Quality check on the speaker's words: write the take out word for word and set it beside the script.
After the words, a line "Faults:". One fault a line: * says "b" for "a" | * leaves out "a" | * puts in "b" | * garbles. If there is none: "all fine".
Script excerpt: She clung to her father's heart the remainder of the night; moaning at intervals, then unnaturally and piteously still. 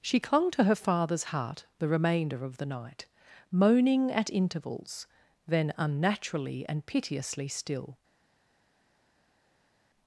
She clung to her father's heart the remainder of the night; moaning at intervals, then unnaturally and piteously still.
Faults:
all fine